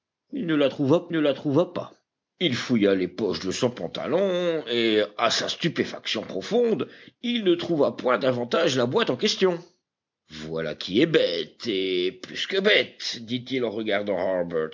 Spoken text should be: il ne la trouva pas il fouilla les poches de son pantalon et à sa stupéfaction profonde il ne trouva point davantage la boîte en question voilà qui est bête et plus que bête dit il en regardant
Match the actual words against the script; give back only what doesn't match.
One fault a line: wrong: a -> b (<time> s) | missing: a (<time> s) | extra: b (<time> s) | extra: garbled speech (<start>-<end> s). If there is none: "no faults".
extra: ne la trouva (1.1 s)